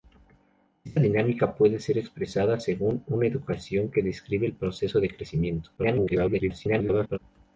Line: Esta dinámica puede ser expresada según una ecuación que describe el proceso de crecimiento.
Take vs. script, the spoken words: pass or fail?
fail